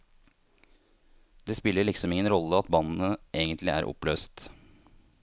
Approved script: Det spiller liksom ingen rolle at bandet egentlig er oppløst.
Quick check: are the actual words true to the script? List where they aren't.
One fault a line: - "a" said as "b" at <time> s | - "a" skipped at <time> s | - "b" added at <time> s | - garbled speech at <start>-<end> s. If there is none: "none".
none